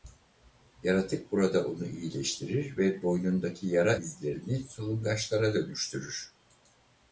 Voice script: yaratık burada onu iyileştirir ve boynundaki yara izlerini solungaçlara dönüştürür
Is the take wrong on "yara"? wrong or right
right